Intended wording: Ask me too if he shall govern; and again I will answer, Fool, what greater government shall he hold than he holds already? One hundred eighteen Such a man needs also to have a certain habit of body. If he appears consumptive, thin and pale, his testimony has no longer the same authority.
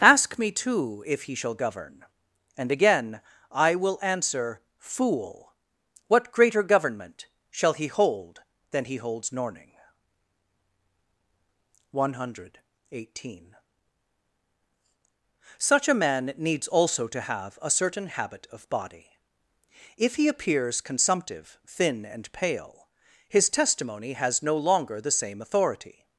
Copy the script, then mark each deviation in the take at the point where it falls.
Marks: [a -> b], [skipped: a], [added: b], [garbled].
Ask me too if he shall govern; and again I will answer, Fool, what greater government shall he hold than he holds [already? -> norning] One hundred eighteen Such a man needs also to have a certain habit of body. If he appears consumptive, thin and pale, his testimony has no longer the same authority.